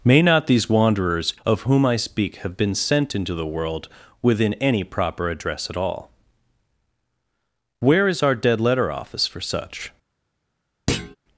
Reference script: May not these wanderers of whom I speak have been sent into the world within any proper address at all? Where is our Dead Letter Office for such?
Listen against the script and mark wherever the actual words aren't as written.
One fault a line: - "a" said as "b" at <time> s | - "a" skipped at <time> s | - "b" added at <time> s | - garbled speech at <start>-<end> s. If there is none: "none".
none